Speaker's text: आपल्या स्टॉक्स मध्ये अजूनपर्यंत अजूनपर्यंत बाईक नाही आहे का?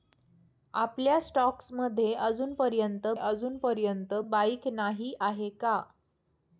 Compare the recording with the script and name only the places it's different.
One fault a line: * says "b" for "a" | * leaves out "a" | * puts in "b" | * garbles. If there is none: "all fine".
all fine